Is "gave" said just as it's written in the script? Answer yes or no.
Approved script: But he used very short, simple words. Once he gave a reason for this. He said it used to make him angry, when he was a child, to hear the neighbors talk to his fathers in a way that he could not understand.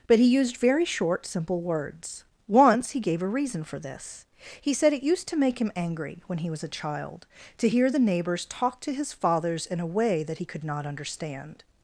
yes